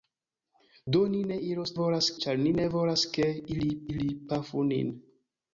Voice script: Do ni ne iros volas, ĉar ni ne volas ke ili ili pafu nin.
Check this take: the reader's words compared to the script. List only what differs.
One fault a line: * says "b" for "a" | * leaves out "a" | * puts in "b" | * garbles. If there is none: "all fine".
all fine